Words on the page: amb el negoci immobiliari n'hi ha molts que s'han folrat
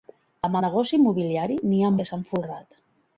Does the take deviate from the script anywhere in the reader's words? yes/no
yes